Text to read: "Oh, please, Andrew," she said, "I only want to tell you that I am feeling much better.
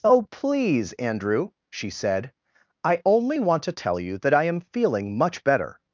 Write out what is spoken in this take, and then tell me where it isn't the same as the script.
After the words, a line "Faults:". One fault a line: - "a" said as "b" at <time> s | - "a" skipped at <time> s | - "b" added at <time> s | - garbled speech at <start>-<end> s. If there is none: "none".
"Oh, please, Andrew," she said, "I only want to tell you that I am feeling much better.
Faults:
none